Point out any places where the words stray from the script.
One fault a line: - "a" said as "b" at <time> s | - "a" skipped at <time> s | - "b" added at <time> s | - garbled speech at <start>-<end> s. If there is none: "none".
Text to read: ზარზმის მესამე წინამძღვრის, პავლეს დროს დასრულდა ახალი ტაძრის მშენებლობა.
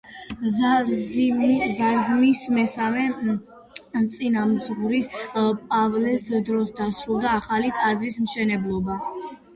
none